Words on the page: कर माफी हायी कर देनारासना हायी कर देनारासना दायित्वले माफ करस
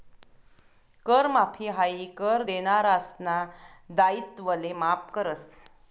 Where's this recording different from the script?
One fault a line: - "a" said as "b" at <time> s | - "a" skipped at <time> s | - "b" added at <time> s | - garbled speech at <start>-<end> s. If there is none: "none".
- "हायी कर देनारासना" skipped at 3.4 s